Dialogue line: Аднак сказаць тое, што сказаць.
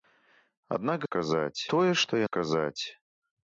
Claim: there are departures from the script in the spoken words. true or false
false